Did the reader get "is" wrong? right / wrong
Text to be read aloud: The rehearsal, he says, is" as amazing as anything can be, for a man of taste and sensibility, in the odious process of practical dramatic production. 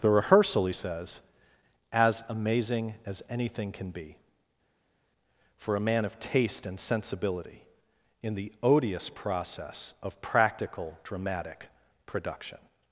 wrong